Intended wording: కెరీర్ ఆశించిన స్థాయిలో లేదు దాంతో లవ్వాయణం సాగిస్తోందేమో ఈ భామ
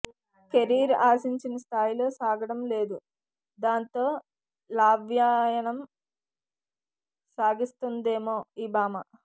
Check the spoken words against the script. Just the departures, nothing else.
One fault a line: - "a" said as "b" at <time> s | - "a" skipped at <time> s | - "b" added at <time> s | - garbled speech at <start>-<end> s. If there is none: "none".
- "సాగడం" added at 2.2 s